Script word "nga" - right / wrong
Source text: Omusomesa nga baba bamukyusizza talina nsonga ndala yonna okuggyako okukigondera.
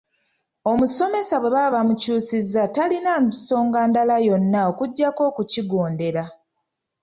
wrong